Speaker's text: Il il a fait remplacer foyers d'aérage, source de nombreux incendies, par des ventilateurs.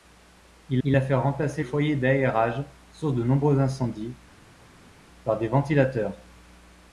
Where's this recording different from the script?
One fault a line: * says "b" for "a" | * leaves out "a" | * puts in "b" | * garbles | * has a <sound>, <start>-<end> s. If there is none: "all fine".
all fine